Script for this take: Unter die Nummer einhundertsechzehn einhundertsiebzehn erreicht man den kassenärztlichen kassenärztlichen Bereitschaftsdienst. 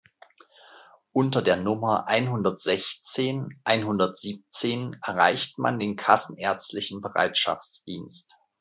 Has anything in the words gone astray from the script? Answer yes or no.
yes